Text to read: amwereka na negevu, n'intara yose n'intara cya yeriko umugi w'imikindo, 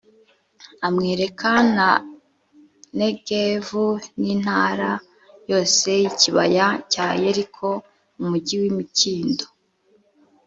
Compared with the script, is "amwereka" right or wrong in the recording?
right